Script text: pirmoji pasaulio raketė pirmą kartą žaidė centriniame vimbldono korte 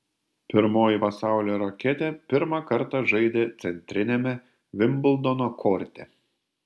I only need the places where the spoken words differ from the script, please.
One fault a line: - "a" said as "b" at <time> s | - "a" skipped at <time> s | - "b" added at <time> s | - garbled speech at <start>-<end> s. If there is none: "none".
none